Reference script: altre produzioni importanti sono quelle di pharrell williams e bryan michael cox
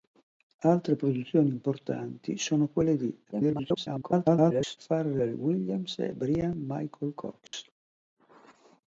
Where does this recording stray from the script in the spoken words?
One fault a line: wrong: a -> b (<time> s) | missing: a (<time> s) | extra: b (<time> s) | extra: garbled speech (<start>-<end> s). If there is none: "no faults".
extra: garbled speech (3.3-4.8 s)